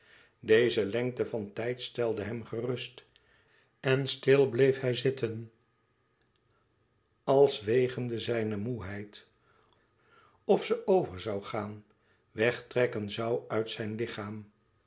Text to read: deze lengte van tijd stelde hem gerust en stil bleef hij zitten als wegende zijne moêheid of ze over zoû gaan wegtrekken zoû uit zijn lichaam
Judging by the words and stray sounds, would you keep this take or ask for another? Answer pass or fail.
pass